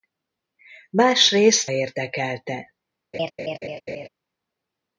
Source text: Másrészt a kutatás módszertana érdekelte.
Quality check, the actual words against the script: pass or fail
fail